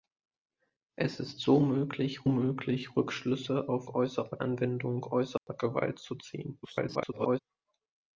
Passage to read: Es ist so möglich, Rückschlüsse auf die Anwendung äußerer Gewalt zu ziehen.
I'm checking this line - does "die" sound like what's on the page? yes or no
no